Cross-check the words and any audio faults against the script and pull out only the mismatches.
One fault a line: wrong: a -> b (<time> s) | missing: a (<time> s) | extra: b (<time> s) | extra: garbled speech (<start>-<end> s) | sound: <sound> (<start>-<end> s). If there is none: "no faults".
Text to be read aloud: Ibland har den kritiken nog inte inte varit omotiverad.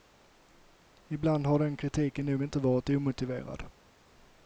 missing: inte (2.6 s)